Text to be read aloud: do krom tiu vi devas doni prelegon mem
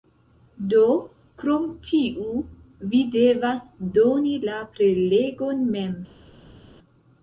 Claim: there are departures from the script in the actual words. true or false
true